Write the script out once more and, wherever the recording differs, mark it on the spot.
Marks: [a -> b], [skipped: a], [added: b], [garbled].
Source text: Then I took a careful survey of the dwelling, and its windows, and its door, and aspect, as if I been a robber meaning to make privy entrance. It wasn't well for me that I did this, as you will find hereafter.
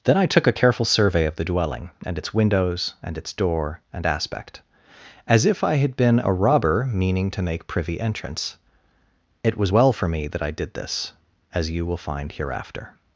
Then I took a careful survey of the dwelling, and its windows, and its door, and aspect, as if I [added: had] been a robber meaning to make privy entrance. It [wasn't -> was] well for me that I did this, as you will find hereafter.